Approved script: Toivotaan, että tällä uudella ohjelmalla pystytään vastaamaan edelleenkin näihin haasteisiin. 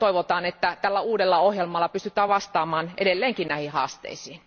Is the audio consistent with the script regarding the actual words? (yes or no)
yes